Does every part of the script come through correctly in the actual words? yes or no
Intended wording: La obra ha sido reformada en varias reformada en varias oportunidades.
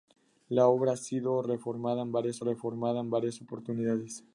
yes